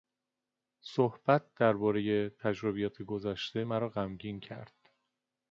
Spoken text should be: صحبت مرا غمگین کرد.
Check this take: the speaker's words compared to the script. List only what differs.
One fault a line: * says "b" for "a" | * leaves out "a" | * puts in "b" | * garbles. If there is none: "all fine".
* puts in "دربارهی تجربیات گذشته"